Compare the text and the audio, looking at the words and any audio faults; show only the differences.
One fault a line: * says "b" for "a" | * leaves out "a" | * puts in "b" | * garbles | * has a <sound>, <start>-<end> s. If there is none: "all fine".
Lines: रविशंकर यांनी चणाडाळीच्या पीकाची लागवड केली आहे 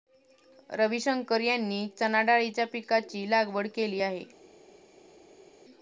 all fine